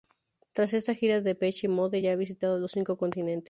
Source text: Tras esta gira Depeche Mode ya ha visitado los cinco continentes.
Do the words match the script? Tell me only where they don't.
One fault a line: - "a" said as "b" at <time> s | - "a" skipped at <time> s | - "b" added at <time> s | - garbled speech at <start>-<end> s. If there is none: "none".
none